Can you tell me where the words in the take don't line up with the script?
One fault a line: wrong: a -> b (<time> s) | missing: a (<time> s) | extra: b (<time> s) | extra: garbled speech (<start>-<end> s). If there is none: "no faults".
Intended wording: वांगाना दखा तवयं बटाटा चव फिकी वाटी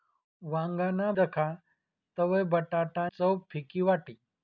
no faults